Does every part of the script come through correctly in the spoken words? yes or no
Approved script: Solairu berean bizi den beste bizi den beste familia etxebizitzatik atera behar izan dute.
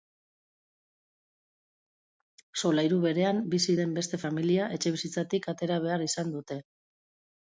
no